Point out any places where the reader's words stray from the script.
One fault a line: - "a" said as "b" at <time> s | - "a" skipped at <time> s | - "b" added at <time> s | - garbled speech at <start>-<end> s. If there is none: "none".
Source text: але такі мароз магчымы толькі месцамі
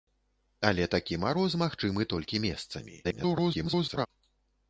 - garbled speech at 3.0-4.1 s